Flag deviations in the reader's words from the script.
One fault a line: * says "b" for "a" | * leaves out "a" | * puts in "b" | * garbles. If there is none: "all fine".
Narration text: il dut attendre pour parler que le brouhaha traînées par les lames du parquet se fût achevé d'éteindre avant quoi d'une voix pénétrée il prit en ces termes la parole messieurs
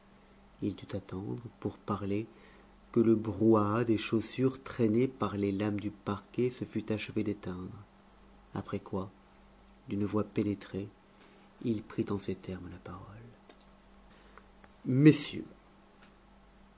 * puts in "des chaussures"
* says "après" for "avant"